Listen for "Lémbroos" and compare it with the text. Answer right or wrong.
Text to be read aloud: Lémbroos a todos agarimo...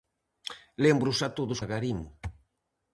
right